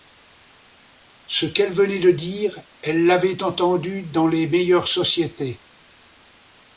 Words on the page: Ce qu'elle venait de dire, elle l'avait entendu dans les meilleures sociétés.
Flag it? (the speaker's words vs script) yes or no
no